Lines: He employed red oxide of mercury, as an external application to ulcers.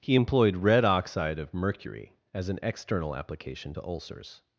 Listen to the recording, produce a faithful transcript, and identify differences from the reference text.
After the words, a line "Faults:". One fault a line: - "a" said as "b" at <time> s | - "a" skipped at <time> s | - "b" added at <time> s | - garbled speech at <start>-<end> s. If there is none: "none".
He employed red oxide of mercury, as an external application to ulcers.
Faults:
none